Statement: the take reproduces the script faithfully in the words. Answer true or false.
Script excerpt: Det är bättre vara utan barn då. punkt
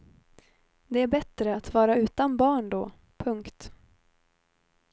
false